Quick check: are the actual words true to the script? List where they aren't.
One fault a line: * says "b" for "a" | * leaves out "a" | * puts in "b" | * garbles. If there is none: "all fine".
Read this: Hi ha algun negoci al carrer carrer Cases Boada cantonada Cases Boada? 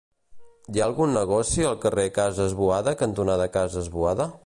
* leaves out "carrer"